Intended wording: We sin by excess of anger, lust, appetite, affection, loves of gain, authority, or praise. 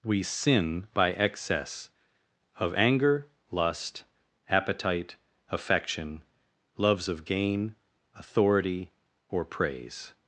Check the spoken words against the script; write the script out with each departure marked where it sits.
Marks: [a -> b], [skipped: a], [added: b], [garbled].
We sin by excess of anger, lust, appetite, affection, loves of gain, authority, or praise.